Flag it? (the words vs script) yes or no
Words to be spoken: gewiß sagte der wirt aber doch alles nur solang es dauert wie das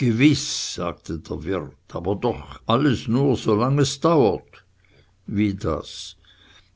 no